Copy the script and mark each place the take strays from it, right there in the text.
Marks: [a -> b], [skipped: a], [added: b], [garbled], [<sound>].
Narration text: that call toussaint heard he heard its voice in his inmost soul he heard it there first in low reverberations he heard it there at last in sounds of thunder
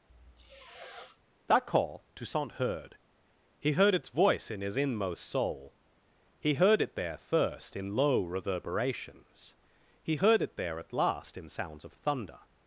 [sniff] that call toussaint heard he heard its voice in his inmost soul he heard it there first in low reverberations he heard it there at last in sounds of thunder